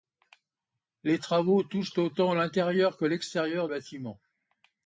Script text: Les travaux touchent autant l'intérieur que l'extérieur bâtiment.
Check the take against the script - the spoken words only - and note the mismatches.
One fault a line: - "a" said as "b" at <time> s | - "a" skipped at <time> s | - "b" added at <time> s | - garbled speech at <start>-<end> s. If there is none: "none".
none